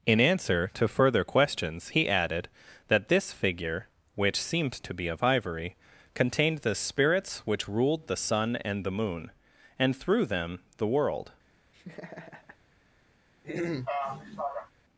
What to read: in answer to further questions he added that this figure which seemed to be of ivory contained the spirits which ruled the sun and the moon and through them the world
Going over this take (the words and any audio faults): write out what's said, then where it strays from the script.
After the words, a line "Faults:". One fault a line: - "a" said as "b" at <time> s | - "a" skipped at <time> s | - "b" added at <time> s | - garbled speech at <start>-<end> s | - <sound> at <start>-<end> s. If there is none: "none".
in answer to further questions he added that this figure which seemed to be of ivory contained the spirits which ruled the sun and the moon and through them the world
Faults:
- laugh at 11.7-12.6 s
- throat clearing at 13.4-14.7 s